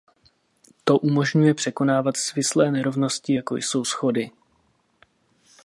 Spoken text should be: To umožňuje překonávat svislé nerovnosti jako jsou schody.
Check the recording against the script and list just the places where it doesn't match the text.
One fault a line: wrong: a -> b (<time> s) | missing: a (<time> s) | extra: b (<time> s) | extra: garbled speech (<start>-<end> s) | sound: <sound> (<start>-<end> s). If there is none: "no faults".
no faults